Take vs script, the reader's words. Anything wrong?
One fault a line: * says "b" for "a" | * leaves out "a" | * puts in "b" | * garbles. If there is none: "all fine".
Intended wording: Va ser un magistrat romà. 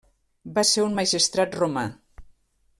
all fine